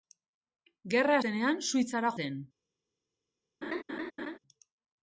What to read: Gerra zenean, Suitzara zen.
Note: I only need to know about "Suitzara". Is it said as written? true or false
true